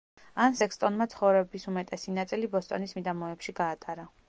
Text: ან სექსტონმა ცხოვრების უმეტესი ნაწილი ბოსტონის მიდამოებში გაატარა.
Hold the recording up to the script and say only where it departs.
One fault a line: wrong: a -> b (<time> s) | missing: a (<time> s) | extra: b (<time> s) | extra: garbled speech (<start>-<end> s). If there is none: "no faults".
no faults